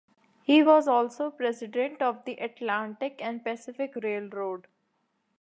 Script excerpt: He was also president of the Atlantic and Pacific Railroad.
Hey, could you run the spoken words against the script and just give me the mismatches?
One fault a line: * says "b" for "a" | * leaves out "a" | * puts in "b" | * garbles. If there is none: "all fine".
all fine